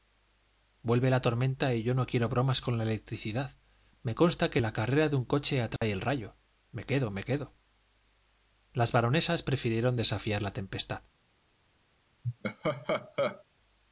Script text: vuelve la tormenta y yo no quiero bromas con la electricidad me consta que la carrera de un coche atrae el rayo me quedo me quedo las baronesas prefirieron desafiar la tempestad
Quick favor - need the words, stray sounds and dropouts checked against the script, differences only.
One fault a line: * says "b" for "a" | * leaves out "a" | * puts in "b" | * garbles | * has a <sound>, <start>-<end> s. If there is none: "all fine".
* has a dropout, 5.8-5.8 s
* has a laugh, 12.2-13.4 s